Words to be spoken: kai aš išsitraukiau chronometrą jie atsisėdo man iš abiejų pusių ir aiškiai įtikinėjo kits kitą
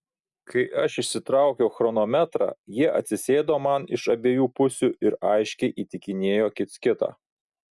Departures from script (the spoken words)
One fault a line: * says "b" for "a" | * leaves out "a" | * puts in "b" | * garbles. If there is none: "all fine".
all fine